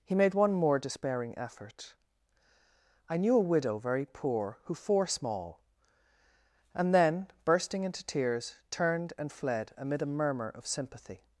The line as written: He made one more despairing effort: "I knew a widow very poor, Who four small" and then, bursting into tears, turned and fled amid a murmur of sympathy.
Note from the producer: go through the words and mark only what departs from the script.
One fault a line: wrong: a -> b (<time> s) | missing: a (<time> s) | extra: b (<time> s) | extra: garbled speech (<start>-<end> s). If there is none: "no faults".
no faults